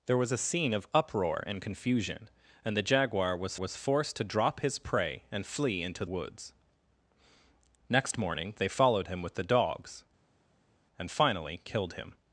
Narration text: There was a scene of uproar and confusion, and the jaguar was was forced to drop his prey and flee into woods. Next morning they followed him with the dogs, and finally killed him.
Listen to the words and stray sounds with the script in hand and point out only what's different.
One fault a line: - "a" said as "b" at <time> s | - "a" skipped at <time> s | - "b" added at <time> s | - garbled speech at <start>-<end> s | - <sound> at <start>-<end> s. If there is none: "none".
none